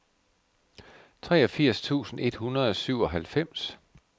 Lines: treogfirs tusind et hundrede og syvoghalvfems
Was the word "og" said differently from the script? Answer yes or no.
no